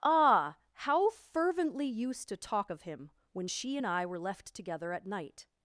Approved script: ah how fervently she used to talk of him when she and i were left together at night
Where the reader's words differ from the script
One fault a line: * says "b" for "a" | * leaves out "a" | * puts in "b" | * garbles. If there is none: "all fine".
* leaves out "she"